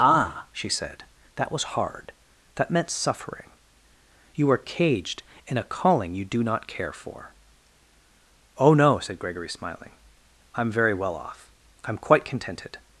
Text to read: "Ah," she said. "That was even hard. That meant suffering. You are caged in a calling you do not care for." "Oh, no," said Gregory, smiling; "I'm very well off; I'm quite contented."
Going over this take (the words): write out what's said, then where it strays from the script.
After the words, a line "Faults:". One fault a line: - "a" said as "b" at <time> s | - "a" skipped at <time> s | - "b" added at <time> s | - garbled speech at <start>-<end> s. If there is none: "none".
"Ah," she said. "That was hard. That meant suffering. You are caged in a calling you do not care for." "Oh, no," said Gregory, smiling; "I'm very well off; I'm quite contented."
Faults:
- "even" skipped at 1.8 s